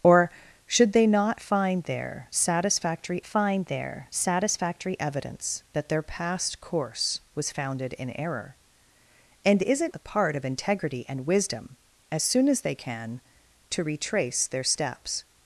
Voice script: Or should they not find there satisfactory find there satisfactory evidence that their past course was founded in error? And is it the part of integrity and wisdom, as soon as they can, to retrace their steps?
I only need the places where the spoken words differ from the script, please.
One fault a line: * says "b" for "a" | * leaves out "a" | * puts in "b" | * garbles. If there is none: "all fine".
all fine